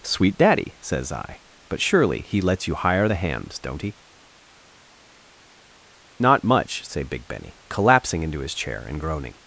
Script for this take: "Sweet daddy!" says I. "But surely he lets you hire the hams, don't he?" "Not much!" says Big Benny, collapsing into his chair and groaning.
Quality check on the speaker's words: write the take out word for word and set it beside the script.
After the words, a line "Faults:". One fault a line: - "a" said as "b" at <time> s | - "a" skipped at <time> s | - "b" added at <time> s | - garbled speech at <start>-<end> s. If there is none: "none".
"Sweet daddy!" says I. "But surely he lets you hire the hams, don't he?" "Not much!" say Big Benny, collapsing into his chair and groaning.
Faults:
- "says" said as "say" at 6.9 s